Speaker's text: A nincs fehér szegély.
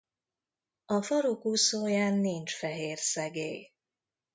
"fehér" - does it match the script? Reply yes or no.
yes